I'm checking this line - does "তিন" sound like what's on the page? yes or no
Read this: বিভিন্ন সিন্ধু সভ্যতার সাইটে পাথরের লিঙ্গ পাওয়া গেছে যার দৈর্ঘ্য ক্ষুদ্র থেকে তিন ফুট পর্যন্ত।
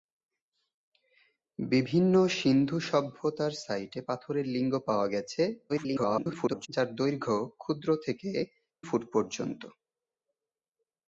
no